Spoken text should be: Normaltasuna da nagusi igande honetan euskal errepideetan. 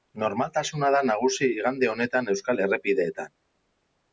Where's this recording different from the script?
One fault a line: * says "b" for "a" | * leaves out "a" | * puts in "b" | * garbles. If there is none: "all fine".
all fine